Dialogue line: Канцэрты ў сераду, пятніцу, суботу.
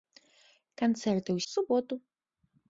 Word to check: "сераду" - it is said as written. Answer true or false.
false